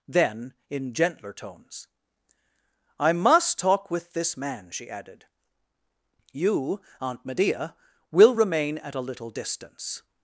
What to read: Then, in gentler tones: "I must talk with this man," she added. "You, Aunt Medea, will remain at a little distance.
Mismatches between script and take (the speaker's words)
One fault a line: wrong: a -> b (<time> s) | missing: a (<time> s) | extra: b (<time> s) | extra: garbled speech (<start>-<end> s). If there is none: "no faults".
no faults